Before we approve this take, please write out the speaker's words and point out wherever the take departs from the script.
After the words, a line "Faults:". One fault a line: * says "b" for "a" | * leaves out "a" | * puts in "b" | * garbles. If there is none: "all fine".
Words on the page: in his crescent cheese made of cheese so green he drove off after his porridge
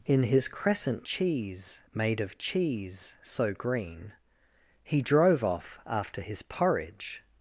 in his crescent cheese made of cheese so green he drove off after his porridge
Faults:
all fine